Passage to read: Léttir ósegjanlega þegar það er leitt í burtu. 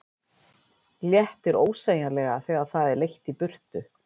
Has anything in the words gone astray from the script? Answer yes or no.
no